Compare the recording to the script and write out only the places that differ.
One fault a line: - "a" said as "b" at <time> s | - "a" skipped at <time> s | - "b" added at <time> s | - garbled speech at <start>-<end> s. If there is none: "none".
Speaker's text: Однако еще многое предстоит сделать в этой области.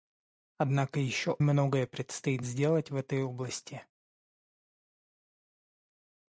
none